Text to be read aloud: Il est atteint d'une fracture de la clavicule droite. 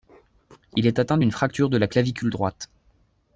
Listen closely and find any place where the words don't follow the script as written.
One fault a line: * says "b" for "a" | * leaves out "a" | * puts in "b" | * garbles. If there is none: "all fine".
all fine